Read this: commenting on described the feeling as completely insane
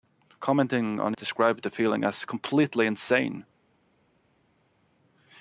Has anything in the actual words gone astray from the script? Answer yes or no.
no